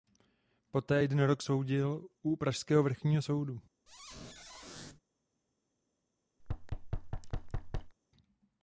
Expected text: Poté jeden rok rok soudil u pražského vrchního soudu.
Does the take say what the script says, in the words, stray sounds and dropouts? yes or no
no